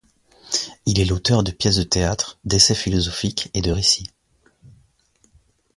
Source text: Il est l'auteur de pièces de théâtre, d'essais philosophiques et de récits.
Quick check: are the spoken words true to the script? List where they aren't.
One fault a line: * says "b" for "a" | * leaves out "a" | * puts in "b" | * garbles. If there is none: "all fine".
all fine